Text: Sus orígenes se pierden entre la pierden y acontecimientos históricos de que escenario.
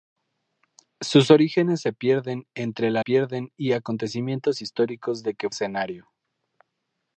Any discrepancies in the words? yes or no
no